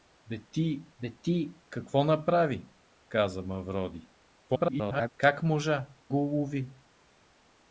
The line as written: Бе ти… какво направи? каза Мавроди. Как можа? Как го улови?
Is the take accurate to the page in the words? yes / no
no